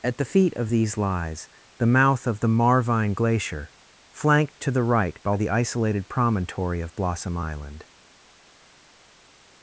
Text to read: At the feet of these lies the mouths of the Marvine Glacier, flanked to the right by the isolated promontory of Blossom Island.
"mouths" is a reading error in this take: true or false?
true